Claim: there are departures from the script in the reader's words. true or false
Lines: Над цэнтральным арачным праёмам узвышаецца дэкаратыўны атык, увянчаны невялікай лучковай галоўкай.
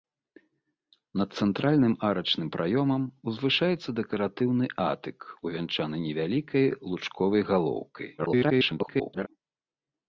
true